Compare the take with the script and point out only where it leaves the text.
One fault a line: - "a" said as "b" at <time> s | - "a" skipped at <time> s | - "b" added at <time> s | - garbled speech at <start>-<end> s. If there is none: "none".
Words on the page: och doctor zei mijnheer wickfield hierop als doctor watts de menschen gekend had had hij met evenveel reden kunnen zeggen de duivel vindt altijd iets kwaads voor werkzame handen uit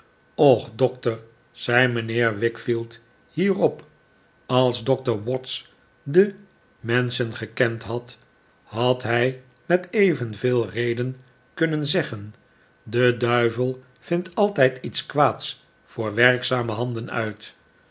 none